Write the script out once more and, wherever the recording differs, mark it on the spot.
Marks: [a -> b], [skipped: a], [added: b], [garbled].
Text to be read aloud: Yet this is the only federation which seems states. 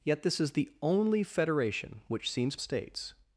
Yet this is the only federation which seems states.